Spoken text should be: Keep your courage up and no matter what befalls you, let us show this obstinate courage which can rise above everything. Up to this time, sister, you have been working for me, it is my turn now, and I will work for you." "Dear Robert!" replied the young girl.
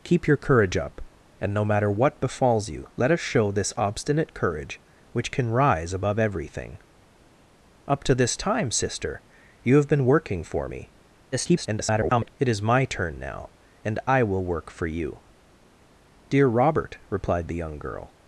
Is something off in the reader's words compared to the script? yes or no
yes